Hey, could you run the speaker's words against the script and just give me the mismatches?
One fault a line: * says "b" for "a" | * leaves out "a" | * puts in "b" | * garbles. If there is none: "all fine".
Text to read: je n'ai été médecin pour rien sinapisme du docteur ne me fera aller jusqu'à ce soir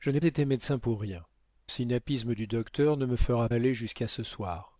all fine